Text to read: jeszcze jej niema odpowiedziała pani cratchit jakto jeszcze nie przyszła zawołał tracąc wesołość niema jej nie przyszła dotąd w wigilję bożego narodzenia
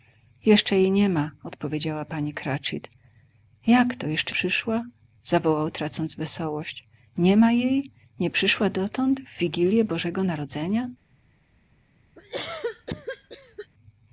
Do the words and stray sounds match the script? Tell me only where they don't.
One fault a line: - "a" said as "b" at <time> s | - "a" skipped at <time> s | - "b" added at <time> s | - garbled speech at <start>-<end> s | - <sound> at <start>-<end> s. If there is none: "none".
- "nie" skipped at 4.3 s
- cough at 12.2-13.7 s